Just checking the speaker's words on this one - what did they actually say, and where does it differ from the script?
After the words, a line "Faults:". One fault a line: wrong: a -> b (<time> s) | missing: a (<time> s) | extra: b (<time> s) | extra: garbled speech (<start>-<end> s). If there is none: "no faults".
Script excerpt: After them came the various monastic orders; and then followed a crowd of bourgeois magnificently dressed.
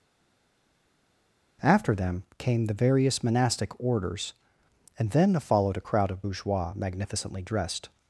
After them came the various monastic orders; and then followed a crowd of bourgeois magnificently dressed.
Faults:
no faults